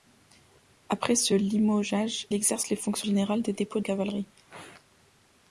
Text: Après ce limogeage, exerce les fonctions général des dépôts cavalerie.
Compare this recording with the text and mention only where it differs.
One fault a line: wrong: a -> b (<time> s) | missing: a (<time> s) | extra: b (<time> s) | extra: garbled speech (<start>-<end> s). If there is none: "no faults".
no faults